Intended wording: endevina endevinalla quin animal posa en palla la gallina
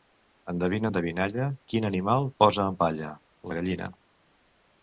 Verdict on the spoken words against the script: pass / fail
pass